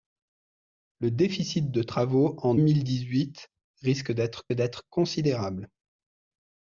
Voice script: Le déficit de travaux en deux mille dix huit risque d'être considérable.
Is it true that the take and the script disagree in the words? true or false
true